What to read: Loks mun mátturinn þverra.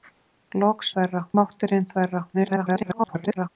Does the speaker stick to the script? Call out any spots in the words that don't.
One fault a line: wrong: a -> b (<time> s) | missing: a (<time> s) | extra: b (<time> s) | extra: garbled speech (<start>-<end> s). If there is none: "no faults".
wrong: mun -> þverra (0.9 s)
extra: garbled speech (2.3-3.5 s)